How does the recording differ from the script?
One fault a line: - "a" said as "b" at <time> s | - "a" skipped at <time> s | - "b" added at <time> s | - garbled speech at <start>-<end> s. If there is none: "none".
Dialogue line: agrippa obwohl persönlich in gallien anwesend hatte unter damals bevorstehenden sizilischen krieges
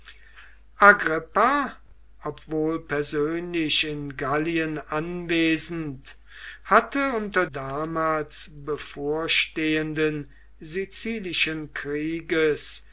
none